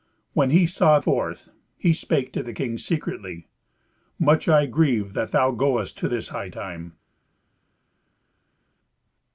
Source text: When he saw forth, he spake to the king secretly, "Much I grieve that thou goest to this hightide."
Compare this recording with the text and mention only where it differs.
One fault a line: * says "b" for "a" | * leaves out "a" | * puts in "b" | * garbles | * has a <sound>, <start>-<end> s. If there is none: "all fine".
all fine